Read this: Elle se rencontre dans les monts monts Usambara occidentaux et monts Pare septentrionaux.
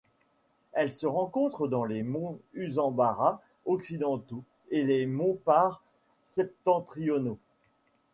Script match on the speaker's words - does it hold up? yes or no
no